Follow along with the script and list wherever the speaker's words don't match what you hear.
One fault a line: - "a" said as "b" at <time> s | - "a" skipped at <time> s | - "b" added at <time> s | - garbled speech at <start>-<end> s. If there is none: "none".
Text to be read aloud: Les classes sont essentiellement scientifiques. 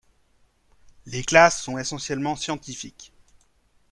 none